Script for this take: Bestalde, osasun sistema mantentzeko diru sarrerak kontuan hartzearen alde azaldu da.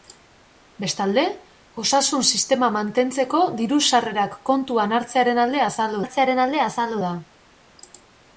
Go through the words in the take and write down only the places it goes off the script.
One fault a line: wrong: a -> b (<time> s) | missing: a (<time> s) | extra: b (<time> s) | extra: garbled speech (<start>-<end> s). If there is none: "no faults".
extra: hartzearen alde azaldu (6.0 s)